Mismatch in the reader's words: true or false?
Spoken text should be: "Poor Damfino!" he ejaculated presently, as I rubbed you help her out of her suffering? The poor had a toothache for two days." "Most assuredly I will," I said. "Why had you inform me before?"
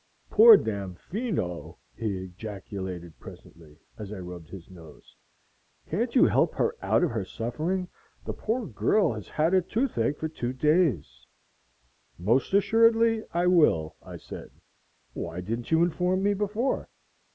true